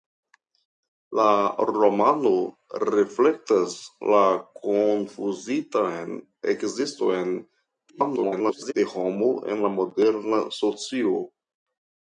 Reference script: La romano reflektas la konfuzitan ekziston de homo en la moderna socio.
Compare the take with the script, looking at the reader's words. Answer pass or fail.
fail